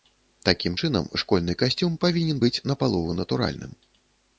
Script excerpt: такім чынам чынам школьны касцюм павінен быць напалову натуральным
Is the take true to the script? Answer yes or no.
no